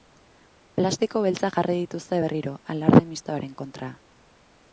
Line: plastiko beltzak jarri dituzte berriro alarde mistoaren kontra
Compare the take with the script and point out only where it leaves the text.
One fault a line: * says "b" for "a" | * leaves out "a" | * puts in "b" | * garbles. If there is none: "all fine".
all fine